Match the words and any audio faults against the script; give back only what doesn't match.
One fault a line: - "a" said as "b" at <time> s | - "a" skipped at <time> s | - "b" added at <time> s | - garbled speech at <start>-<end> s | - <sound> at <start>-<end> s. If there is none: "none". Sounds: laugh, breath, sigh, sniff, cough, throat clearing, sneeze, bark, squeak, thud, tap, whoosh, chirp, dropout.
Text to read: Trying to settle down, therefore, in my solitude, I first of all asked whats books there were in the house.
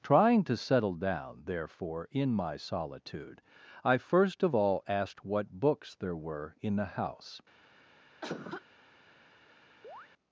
- "whats" said as "what" at 5.2 s
- cough at 8.2-8.6 s
- chirp at 9.8-10.1 s